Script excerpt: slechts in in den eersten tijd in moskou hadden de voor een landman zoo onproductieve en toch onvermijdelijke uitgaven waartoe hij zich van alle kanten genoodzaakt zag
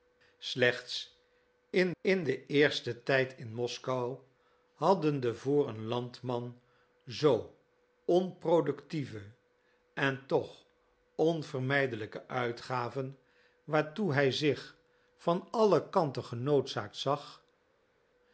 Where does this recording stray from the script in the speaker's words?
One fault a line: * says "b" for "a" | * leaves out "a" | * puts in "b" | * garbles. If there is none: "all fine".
all fine